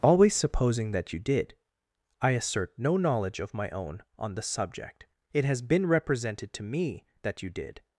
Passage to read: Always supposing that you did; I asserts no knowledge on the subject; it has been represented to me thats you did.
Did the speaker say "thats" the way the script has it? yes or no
no